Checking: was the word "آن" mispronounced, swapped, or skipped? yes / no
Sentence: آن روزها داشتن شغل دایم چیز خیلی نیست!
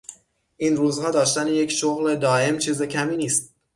yes